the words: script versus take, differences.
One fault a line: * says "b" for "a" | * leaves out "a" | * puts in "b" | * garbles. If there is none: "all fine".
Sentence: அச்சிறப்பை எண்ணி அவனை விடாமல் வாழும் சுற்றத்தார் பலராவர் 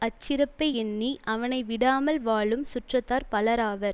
all fine